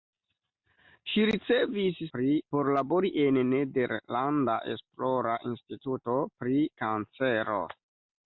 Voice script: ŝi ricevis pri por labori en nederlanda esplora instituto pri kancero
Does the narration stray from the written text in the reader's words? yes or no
no